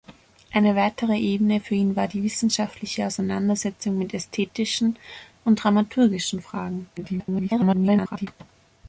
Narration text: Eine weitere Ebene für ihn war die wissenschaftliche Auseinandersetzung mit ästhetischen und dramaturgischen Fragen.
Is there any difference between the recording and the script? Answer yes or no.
yes